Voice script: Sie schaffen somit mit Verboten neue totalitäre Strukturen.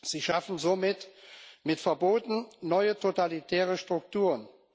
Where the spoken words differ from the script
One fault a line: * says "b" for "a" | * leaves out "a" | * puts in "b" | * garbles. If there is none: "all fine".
all fine